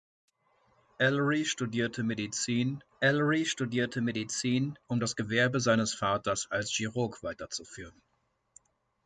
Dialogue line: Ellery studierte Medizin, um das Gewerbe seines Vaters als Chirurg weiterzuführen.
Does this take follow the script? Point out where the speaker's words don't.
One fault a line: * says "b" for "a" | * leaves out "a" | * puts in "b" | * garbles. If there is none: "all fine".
* puts in "ellery studierte Medizin"